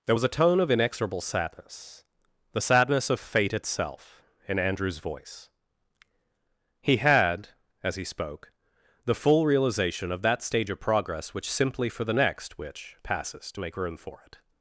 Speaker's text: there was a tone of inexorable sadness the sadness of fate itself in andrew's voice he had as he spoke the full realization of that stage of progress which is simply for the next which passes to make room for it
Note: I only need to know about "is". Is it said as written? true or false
false